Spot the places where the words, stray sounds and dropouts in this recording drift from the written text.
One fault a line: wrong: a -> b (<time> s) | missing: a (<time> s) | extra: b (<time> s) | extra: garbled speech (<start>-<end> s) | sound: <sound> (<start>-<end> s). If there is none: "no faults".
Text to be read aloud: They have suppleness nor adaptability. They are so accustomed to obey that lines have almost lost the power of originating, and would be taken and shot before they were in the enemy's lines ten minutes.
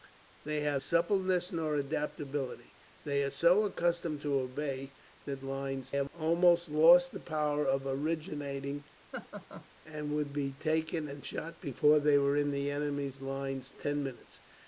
sound: laugh (9.1-9.7 s)